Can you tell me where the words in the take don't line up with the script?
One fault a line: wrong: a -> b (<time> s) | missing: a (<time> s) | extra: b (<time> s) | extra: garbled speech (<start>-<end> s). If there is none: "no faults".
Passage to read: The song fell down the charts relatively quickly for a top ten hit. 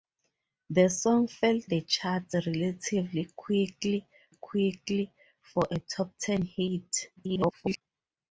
missing: down (1.6 s)
extra: quickly (4.3 s)
extra: garbled speech (7.2-7.8 s)